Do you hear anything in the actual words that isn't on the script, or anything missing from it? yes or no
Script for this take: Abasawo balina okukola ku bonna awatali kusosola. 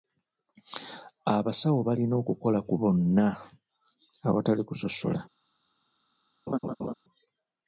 no